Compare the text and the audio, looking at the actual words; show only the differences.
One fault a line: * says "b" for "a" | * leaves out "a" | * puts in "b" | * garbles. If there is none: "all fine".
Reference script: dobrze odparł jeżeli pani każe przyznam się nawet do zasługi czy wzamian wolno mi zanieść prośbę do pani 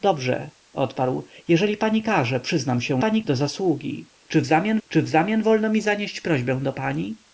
* says "pani" for "nawet"
* puts in "czy wzamian"